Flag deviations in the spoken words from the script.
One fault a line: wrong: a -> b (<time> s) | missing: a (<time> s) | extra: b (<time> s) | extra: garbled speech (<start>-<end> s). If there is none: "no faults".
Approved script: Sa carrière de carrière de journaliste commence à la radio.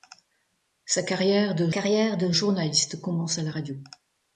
no faults